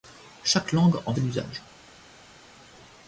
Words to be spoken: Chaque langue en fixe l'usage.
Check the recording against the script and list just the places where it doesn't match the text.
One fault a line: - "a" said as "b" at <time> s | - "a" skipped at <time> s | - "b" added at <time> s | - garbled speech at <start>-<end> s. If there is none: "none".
- "fixe" skipped at 1.1 s